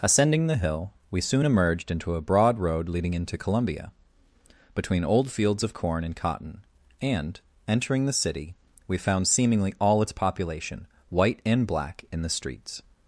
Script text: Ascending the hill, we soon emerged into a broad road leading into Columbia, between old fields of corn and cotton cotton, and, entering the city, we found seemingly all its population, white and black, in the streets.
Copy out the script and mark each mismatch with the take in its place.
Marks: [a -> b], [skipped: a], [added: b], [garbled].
Ascending the hill, we soon emerged into a broad road leading into Columbia, between old fields of corn and cotton [skipped: cotton,] and, entering the city, we found seemingly all its population, white and black, in the streets.